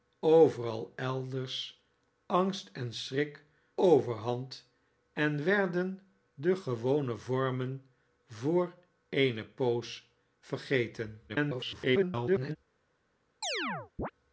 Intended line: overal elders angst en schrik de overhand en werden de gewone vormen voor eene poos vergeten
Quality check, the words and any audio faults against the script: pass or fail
fail